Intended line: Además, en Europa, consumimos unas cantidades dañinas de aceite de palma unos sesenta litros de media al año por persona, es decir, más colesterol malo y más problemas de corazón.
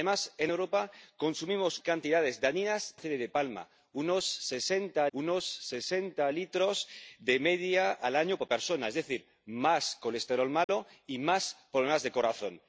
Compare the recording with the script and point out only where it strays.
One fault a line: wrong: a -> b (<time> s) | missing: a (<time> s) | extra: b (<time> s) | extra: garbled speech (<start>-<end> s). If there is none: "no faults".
missing: unas (1.8 s)
missing: de (3.0 s)
extra: unos sesenta (5.1 s)